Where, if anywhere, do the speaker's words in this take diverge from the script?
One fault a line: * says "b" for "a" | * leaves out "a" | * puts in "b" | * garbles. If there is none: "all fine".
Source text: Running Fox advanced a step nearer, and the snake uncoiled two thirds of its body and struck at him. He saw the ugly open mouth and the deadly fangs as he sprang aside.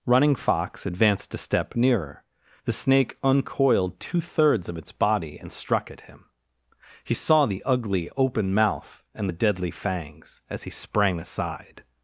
* leaves out "and"